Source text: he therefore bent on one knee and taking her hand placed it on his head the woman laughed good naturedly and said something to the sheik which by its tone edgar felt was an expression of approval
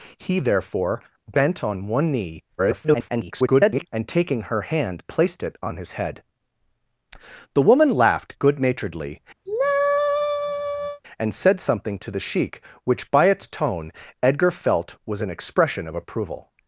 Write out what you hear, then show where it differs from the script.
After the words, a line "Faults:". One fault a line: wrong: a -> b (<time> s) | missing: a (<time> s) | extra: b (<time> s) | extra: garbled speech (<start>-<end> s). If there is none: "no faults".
he therefore bent on one knee [garbled] and taking her hand placed it on his head the woman laughed good naturedly and said something to the sheik which by its tone edgar felt was an expression of approval
Faults:
extra: garbled speech (2.6-3.9 s)